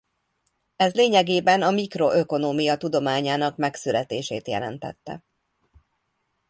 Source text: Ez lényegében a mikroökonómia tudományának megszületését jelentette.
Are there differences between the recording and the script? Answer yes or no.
no